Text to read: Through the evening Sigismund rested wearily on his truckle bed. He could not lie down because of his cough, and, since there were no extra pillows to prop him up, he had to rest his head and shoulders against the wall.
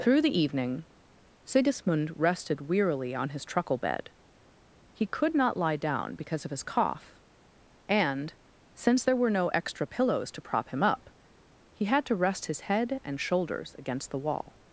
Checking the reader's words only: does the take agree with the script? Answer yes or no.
yes